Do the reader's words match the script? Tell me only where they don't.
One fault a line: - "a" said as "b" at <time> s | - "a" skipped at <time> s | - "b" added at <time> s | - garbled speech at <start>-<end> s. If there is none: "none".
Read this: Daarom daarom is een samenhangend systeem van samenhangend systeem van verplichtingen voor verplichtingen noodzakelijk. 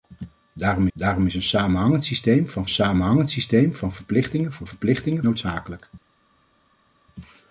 none